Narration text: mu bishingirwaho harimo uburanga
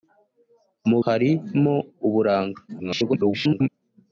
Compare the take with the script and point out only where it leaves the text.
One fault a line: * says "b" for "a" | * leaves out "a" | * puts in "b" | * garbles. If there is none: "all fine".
* leaves out "bishingirwaho"
* garbles